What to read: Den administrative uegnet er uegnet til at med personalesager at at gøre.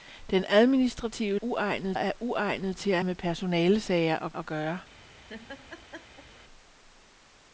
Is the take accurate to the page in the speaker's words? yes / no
yes